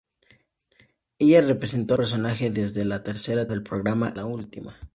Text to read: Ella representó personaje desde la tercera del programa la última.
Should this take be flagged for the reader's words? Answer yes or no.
no